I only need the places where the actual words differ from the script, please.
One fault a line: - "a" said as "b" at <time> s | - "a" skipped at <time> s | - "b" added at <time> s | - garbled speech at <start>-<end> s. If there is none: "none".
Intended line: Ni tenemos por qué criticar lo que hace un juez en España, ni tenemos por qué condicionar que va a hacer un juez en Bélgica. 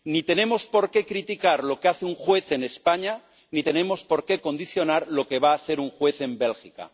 - "lo" added at 5.1 s